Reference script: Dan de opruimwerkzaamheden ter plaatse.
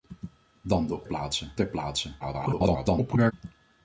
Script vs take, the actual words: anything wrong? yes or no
yes